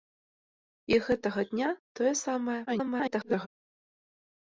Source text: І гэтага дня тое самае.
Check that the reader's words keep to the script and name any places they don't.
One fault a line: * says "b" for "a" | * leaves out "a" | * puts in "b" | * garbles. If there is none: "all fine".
* garbles